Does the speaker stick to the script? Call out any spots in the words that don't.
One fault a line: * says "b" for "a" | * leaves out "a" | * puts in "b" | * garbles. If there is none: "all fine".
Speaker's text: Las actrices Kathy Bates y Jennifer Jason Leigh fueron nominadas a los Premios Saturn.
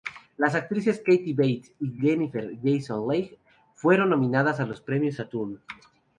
all fine